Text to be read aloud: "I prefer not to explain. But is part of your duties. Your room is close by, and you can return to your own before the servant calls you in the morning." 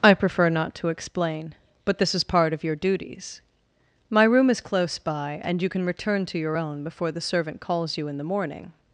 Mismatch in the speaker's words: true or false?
true